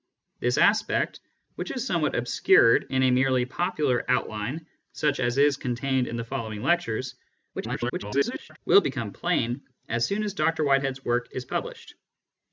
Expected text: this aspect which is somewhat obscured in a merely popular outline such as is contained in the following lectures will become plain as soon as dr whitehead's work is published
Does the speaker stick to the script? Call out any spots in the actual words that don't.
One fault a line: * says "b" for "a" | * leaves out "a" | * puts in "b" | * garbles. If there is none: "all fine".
* garbles